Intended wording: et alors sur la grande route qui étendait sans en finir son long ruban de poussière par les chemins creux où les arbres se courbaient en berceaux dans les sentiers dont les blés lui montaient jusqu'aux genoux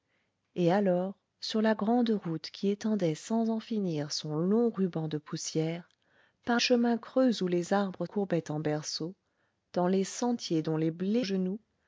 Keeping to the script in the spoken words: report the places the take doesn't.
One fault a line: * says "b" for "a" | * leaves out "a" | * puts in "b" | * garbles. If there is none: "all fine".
* leaves out "les"
* leaves out "se"
* leaves out "lui montaient jusqu'aux"